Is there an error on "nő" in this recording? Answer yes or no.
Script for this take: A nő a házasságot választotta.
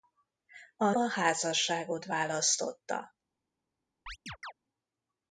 yes